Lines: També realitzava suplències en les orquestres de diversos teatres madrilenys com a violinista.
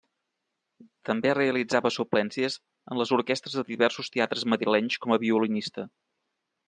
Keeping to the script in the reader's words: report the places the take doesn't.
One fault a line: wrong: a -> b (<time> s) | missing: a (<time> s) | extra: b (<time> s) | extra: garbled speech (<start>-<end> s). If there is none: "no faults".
no faults